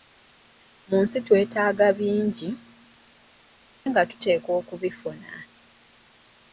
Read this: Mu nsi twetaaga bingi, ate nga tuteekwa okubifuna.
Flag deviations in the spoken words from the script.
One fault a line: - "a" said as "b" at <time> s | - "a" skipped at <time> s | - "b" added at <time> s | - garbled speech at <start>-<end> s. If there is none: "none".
- "ate" skipped at 2.5 s